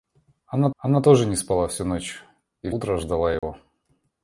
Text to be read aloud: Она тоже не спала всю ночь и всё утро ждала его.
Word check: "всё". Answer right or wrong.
wrong